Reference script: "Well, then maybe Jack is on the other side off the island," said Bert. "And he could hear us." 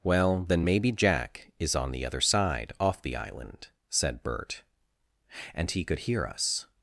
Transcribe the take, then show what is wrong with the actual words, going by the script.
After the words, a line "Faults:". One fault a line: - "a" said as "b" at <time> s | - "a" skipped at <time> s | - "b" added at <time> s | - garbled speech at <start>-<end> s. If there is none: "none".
"Well, then maybe Jack is on the other side off the island," said Bert. "And he could hear us."
Faults:
none